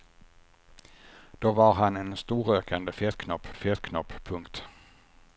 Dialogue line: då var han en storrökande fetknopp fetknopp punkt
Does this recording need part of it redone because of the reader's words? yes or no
no